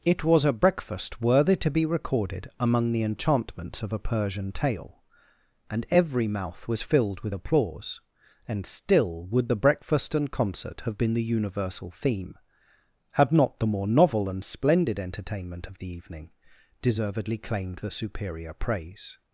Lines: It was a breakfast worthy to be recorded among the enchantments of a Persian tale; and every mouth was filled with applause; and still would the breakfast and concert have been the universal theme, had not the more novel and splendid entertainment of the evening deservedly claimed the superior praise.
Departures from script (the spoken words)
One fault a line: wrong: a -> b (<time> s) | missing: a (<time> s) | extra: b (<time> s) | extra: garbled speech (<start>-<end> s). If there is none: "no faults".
no faults